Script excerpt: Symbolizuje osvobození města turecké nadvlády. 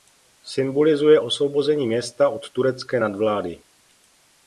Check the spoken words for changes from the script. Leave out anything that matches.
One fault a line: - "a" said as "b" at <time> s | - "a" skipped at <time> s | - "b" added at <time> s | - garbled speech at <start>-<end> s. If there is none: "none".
- "od" added at 2.3 s